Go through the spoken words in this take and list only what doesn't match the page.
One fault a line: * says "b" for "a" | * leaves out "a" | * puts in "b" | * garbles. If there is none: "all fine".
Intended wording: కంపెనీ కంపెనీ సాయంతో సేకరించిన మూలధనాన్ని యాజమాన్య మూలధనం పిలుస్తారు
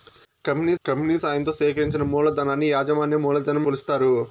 all fine